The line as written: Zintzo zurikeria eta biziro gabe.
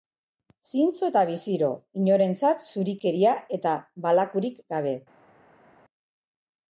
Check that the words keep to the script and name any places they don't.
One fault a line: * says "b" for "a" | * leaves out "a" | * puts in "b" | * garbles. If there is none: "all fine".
* puts in "eta biziro inorentzat"
* says "balakurik" for "biziro"